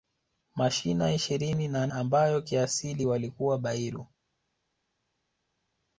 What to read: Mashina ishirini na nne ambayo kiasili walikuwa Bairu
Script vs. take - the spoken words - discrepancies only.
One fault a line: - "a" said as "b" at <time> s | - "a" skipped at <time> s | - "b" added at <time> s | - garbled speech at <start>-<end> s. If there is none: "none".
- "nne" skipped at 1.9 s